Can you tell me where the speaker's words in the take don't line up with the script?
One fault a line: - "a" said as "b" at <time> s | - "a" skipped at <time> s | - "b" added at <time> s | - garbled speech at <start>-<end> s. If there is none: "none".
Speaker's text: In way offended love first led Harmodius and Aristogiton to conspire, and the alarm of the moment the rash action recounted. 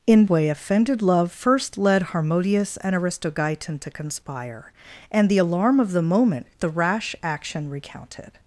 none